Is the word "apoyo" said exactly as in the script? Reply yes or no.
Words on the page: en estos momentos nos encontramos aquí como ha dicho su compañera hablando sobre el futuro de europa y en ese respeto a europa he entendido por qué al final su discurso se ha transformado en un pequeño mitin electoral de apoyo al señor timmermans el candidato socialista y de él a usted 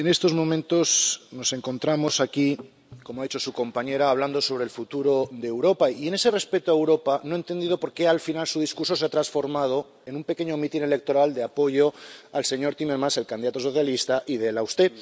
yes